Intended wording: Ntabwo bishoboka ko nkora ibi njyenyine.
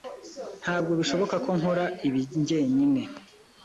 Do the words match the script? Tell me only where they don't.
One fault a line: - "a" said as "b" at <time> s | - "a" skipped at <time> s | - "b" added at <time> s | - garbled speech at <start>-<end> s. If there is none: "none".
none